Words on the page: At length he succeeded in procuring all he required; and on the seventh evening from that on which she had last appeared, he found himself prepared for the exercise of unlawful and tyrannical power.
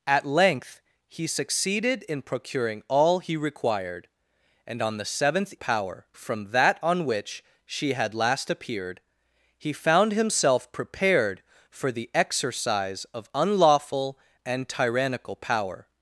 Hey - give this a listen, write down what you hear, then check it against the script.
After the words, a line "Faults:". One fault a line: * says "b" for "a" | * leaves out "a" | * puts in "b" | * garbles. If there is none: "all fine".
At length he succeeded in procuring all he required; and on the seventh power from that on which she had last appeared, he found himself prepared for the exercise of unlawful and tyrannical power.
Faults:
* says "power" for "evening"